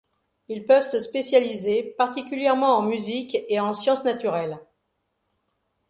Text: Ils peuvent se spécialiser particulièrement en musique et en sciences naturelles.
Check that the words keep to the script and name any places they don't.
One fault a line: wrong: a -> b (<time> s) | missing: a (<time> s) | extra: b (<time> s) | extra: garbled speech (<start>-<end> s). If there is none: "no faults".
no faults